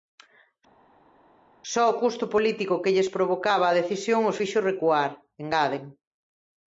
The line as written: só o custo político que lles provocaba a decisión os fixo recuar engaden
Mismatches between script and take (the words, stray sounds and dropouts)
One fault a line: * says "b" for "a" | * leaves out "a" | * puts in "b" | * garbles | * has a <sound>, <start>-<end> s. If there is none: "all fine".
all fine